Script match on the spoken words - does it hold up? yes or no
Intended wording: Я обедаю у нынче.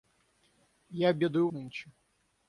yes